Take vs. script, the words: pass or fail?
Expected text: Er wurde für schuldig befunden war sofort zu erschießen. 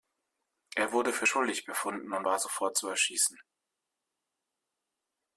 fail